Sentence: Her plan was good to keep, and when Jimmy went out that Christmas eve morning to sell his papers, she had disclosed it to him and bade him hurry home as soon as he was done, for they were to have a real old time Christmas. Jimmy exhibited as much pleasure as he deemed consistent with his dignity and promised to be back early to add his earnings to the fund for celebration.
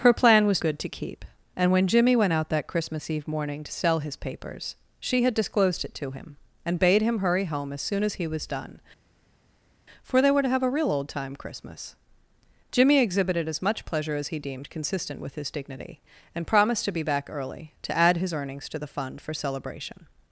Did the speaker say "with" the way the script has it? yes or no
yes